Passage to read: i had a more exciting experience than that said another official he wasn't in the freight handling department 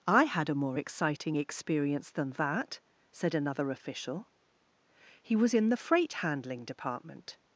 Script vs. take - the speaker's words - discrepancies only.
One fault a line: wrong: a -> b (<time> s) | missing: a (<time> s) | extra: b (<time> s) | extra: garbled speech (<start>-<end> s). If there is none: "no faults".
wrong: wasn't -> was (5.3 s)